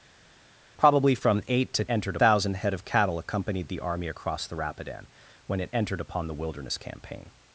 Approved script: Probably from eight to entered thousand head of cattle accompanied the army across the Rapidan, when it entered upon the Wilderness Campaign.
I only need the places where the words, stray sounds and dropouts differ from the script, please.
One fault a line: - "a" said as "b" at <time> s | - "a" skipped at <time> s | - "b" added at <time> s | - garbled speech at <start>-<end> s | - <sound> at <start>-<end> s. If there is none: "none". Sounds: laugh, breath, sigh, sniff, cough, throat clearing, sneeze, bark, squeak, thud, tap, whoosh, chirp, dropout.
none